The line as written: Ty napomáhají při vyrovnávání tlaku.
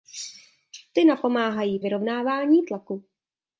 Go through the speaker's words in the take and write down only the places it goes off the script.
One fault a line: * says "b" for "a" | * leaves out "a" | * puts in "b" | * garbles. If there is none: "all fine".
* leaves out "při"